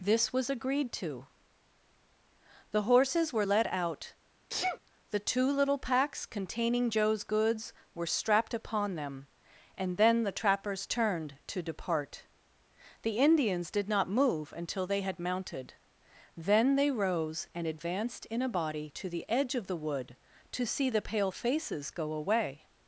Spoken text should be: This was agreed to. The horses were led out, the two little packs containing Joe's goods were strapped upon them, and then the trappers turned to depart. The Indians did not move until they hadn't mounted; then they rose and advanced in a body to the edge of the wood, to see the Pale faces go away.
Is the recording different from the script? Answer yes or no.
yes